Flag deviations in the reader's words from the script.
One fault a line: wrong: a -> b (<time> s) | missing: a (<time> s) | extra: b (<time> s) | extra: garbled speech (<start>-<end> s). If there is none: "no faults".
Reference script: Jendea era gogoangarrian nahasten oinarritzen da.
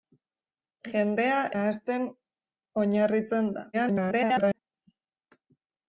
missing: era gogoangarrian (1.4 s)
extra: garbled speech (3.7-4.6 s)